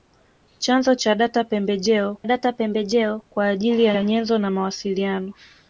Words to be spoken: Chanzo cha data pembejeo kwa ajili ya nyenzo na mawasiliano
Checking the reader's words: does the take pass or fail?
fail